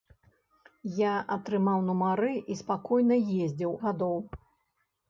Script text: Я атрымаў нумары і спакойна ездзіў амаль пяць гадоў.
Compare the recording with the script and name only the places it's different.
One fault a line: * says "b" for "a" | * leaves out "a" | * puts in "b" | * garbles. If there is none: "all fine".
* leaves out "амаль пяць"